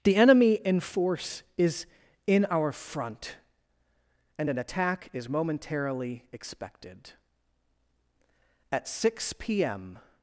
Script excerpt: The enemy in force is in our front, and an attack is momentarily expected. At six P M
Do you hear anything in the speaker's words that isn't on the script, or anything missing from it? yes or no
no